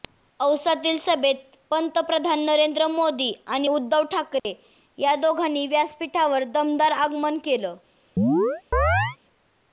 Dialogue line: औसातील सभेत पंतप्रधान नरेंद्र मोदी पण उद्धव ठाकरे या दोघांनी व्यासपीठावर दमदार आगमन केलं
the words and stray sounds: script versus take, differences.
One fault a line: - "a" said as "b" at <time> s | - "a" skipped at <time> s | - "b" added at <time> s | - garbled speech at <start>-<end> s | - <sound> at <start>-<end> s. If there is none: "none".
- "पण" said as "आणि" at 3.5 s
- dropout at 4.4-4.4 s
- chirp at 8.2-9.2 s